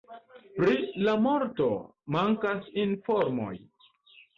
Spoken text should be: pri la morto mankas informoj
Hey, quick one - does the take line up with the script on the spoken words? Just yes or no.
yes